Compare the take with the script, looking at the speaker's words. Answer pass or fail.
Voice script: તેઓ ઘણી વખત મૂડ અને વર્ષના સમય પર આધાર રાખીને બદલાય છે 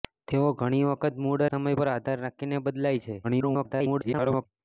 fail